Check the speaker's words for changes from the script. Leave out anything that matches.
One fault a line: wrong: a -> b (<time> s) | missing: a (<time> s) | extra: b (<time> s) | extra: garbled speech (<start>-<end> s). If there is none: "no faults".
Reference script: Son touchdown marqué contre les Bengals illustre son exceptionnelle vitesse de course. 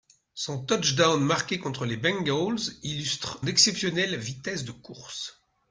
missing: son (3.4 s)